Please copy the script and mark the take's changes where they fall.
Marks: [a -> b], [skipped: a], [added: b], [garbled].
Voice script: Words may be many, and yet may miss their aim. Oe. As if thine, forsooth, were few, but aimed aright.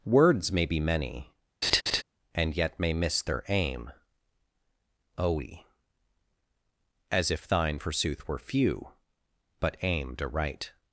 Words may be many, and yet may miss their aim. Oe. As if thine, forsooth, were few, but aimed aright.